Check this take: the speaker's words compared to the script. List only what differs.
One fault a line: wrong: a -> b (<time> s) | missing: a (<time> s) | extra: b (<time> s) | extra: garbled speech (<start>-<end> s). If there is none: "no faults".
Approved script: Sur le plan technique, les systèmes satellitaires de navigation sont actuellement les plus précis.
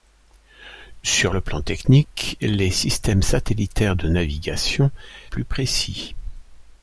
missing: sont actuellement les (4.9 s)